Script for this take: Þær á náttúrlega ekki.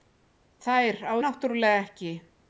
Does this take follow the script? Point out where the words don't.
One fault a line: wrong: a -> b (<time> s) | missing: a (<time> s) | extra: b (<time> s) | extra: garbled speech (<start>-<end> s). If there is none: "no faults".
no faults